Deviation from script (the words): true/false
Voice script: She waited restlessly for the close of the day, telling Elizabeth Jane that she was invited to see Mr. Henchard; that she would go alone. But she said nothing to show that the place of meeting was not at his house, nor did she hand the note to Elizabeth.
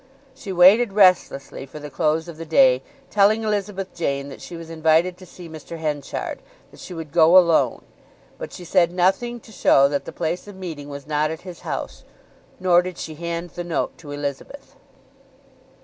false